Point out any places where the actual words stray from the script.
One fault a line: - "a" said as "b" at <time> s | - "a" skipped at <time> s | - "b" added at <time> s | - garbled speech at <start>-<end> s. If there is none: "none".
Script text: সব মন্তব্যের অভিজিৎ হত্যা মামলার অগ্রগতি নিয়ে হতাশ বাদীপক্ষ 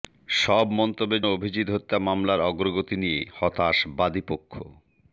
none